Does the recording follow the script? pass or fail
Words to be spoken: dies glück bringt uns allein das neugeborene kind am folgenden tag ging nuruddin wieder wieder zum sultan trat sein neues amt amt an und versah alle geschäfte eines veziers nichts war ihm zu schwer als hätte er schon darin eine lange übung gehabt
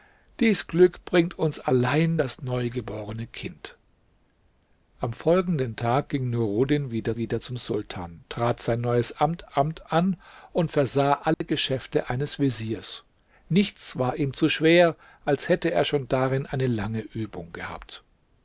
pass